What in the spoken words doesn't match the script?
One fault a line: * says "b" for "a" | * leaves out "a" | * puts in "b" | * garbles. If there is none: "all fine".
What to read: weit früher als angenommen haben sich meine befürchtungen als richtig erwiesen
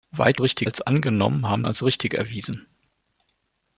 * says "richtig" for "früher"
* leaves out "sich meine befürchtungen"